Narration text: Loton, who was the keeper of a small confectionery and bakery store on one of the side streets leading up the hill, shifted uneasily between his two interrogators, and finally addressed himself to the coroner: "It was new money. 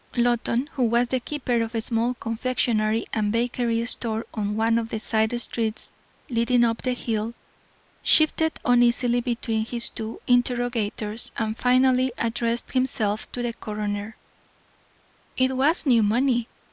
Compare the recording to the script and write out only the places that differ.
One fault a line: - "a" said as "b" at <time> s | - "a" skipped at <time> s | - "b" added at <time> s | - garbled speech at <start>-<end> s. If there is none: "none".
none